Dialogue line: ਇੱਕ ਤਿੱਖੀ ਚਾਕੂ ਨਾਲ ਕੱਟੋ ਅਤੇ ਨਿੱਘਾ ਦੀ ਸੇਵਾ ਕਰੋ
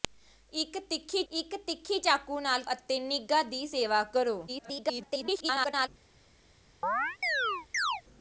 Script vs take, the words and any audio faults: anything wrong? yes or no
yes